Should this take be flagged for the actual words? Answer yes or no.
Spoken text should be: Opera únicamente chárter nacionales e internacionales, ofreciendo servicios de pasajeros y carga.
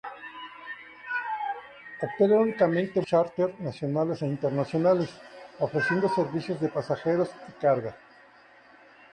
no